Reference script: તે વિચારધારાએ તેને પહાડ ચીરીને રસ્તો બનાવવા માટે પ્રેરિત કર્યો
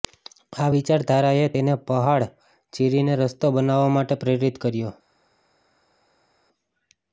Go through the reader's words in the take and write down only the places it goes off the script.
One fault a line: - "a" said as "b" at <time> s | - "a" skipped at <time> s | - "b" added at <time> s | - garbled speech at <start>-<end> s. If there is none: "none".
- "તે" said as "આ" at 0.6 s